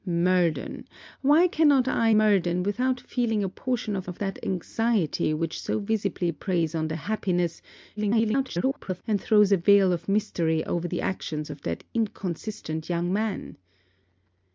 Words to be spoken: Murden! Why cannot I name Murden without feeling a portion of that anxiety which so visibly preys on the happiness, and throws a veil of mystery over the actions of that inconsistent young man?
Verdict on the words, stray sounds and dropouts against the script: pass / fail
fail